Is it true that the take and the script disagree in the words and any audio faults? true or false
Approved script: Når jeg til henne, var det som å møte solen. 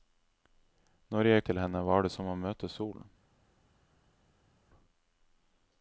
false